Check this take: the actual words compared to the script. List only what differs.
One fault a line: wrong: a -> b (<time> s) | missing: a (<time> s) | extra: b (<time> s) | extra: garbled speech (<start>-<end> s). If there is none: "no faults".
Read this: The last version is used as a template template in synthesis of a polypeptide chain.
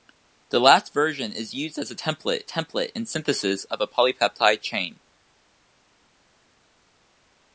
no faults